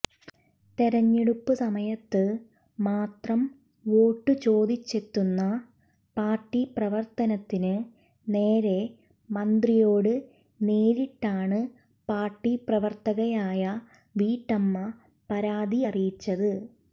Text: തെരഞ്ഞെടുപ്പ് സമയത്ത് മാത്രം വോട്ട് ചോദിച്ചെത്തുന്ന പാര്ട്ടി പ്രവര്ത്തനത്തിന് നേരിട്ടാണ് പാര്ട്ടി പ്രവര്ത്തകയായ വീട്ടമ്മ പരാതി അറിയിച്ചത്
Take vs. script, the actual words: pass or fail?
fail